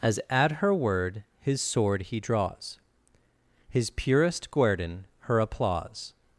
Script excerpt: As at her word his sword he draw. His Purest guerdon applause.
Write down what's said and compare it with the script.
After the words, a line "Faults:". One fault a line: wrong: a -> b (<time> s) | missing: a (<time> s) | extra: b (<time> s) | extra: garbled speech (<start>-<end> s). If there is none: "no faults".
As at her word his sword he draws. His Purest guerdon her applause.
Faults:
wrong: draw -> draws (2.2 s)
extra: her (5.2 s)